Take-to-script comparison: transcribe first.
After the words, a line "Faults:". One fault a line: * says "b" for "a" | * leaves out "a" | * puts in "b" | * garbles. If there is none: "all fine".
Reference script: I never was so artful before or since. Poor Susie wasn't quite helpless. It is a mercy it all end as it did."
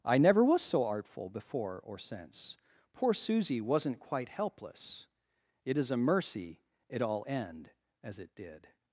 I never was so artful before or since. Poor Susie wasn't quite helpless. It is a mercy it all end as it did."
Faults:
all fine